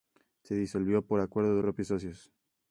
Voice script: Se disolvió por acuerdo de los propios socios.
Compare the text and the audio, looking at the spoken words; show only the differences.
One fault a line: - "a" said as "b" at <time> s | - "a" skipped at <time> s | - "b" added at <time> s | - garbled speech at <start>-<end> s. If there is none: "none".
- "los" skipped at 1.6 s